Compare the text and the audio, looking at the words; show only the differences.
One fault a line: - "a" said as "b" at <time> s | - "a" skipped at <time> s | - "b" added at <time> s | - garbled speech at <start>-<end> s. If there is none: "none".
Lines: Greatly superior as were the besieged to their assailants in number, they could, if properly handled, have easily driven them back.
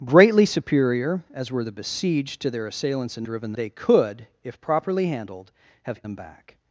- "number" said as "driven" at 3.2 s
- "easily driven" skipped at 6.0 s